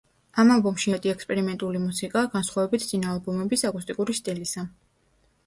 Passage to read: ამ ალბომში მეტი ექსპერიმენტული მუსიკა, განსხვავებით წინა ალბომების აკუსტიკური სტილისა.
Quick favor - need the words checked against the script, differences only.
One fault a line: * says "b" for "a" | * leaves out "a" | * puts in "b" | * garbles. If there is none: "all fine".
all fine